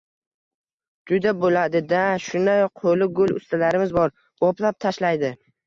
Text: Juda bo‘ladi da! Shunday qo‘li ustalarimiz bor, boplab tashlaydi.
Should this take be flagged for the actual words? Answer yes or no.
yes